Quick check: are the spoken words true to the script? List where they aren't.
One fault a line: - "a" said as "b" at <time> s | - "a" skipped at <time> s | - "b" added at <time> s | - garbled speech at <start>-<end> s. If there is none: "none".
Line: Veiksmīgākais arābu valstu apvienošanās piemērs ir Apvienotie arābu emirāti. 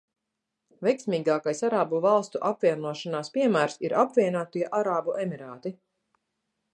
none